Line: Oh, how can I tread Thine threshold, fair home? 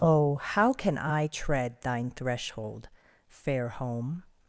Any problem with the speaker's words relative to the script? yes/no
no